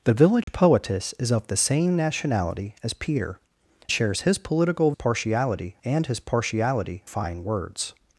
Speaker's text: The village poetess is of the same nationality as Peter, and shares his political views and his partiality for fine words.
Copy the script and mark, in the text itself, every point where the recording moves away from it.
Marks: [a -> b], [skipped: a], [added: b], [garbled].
The village poetess is of the same nationality as Peter, [skipped: and] shares his political [views -> partiality] and his partiality [skipped: for] fine words.